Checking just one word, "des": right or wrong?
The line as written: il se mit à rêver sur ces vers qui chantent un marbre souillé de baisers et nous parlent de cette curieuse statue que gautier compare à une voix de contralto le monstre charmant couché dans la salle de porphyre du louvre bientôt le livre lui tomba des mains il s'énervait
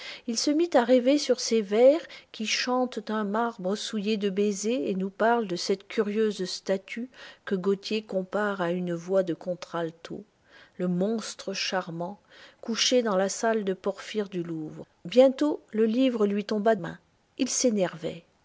wrong